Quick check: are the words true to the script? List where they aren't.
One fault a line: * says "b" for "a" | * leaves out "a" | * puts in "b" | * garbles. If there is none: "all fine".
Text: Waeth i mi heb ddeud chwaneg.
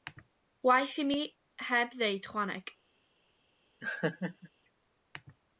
all fine